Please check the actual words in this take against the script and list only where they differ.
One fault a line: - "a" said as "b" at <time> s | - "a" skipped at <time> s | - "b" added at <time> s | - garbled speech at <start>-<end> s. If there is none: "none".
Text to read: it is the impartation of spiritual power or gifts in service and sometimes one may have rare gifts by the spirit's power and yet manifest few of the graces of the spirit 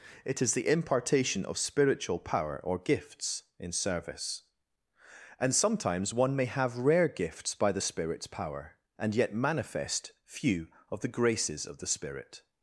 none